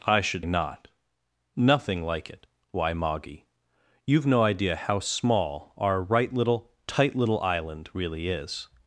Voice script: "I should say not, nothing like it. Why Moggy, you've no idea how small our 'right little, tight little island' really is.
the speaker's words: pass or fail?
fail